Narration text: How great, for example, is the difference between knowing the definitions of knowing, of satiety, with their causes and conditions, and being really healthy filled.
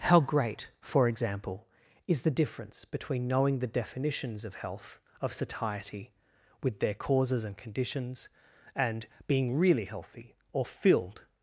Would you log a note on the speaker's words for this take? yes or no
yes